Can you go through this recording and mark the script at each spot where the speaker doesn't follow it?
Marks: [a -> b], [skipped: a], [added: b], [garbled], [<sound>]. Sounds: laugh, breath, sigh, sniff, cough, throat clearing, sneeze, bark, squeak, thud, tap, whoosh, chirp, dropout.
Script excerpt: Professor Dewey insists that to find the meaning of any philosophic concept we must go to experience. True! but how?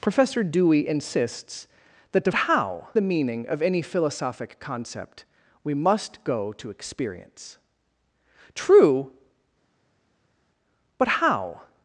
Professor Dewey insists that to [find -> how] the meaning of any philosophic concept we must go to experience. True! but how?